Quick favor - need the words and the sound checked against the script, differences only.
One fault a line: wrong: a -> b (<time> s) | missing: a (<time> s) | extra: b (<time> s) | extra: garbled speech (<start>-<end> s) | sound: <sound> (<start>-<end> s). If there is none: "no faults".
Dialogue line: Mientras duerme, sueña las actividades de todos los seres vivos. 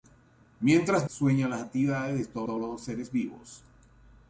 missing: duerme (1.1 s)
extra: todos (2.4 s)